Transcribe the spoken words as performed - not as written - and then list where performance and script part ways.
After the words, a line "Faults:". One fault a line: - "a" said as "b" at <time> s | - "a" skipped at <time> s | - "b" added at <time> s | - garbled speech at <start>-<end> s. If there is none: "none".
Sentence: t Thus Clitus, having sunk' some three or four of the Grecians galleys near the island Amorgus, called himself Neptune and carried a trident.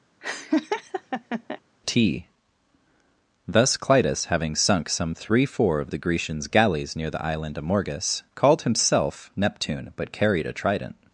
t Thus Clitus, having sunk' some three four of the Grecians galleys near the island Amorgus, called himself Neptune but carried a trident.
Faults:
- "or" skipped at 5.4 s
- "and" said as "but" at 10.0 s